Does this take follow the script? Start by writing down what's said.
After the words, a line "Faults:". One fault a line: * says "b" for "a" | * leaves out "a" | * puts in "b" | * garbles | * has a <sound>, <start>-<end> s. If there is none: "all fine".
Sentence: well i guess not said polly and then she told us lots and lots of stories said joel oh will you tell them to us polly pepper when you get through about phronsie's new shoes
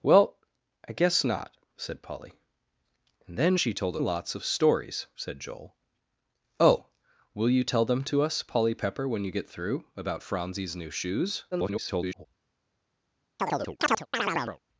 well i guess not said polly and then she told lots of stories said joel oh will you tell them to us polly pepper when you get through about phronsie's new shoes [garbled]
Faults:
* leaves out "us lots and"
* garbles
* has a chirp, 13.4-14.6 s